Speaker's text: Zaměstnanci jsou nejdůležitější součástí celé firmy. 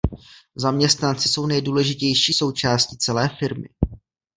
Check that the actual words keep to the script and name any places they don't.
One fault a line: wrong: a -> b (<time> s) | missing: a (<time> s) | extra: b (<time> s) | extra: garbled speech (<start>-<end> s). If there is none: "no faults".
no faults